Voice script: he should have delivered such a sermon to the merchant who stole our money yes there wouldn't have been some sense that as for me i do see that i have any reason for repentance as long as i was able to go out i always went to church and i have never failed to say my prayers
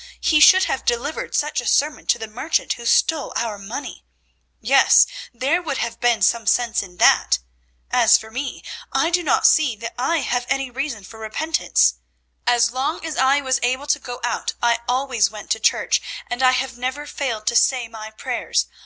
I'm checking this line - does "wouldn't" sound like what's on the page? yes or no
no